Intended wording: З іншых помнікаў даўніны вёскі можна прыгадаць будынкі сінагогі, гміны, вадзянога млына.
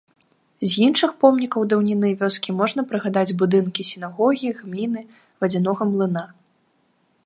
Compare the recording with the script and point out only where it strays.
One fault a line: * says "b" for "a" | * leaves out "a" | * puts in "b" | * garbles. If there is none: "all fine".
all fine